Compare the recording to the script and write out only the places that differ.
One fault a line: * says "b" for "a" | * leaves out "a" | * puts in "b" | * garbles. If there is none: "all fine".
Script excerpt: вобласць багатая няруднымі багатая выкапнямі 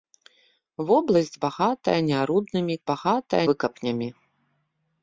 all fine